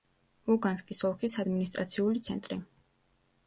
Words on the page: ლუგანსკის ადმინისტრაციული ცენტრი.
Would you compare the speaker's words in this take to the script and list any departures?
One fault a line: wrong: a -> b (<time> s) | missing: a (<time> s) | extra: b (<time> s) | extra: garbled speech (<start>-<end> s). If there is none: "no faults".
extra: ოლქის (1.1 s)